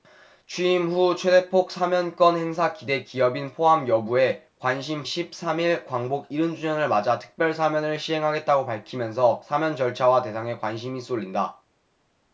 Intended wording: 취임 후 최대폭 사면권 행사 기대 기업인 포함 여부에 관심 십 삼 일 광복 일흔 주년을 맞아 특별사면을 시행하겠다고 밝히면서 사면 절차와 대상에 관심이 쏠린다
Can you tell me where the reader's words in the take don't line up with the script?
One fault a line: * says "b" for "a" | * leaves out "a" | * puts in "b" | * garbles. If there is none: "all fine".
all fine